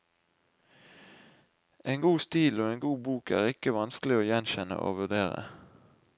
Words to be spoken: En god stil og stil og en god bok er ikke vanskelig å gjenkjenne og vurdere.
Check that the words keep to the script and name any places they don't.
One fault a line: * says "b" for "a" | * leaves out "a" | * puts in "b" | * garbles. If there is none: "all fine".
* leaves out "stil og"